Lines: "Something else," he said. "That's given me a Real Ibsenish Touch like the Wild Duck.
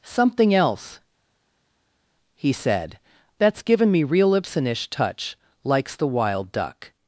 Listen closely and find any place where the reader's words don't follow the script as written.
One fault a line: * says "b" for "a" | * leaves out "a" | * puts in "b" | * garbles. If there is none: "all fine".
* leaves out "a"
* says "likes" for "like"